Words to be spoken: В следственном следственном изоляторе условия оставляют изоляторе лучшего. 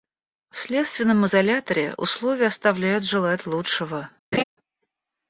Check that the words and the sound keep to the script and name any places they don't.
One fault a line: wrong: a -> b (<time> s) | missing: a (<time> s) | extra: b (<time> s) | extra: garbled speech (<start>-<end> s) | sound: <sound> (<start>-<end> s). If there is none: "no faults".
missing: следственном (1.3 s)
wrong: изоляторе -> желать (3.0 s)
sound: laugh (4.3-4.4 s)